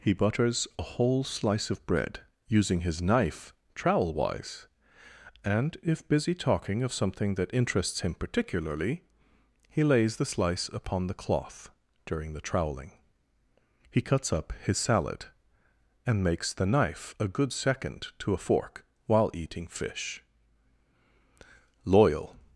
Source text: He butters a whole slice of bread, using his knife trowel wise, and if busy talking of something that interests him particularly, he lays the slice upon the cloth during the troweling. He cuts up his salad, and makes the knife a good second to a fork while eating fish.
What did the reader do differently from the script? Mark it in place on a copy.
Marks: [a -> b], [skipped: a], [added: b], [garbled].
He butters a whole slice of bread, using his knife trowel wise, and if busy talking of something that interests him particularly, he lays the slice upon the cloth during the troweling. He cuts up his salad, and makes the knife a good second to a fork while eating fish. [added: Loyal]